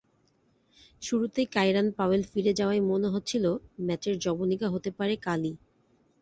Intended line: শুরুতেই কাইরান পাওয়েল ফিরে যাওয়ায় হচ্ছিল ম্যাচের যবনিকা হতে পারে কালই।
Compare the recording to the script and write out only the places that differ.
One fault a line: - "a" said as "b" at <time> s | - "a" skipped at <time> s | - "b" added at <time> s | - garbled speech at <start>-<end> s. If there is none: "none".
- "মনে" added at 2.9 s